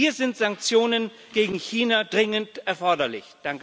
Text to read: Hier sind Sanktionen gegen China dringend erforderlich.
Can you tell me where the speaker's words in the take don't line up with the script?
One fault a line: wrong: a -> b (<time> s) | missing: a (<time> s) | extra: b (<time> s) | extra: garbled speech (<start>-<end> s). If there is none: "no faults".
no faults